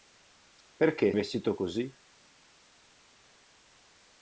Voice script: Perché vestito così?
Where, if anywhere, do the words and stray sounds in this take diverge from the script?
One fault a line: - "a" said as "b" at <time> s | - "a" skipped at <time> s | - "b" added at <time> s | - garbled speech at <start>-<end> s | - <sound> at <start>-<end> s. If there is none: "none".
none